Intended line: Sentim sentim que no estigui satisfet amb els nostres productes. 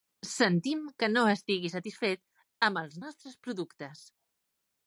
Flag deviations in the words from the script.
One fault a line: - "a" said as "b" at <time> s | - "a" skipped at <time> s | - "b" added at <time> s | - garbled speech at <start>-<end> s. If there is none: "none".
- "sentim" skipped at 0.8 s